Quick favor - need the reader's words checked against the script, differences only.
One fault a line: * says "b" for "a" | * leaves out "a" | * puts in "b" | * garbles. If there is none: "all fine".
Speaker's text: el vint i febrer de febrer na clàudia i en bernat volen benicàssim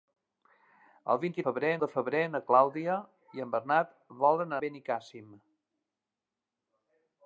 all fine